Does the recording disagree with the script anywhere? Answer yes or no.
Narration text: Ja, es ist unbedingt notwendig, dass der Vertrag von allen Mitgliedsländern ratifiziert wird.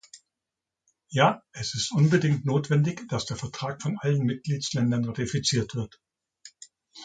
no